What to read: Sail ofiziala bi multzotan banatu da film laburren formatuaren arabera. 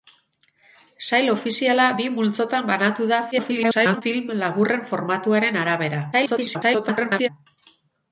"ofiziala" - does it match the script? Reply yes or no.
yes